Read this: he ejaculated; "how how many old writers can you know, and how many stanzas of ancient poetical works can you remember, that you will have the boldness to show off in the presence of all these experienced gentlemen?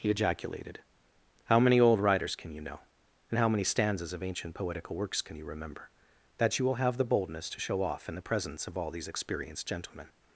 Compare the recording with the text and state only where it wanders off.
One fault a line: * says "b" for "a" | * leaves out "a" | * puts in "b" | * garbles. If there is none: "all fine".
* leaves out "how"